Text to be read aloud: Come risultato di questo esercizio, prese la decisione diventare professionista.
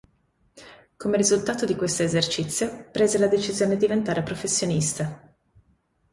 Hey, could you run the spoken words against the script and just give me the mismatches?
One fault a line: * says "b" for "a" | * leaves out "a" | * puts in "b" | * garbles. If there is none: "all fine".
all fine